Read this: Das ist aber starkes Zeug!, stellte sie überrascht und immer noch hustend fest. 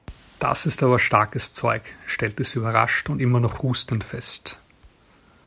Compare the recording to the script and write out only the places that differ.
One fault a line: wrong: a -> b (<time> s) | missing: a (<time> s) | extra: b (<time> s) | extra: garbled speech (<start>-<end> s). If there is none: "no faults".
no faults